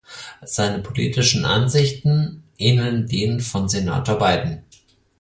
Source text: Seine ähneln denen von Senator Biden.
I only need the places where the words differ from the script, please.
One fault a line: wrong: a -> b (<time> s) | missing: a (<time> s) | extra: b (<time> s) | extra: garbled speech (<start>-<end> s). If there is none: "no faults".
extra: politischen Ansichten (0.8 s)